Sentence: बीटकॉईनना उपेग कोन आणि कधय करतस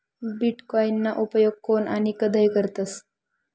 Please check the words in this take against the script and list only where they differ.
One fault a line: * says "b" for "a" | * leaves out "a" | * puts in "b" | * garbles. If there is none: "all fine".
all fine